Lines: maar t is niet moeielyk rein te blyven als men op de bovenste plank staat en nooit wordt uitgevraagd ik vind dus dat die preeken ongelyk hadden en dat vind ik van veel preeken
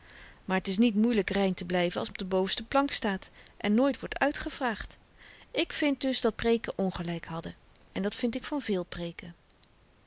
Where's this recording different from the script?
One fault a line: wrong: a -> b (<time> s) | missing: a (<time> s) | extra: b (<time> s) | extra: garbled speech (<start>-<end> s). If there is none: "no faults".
missing: men (2.1 s)
missing: die (6.4 s)